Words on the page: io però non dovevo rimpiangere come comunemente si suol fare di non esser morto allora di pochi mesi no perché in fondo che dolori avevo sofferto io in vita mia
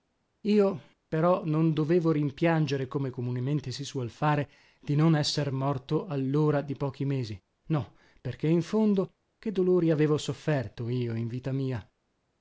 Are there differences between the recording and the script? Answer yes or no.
no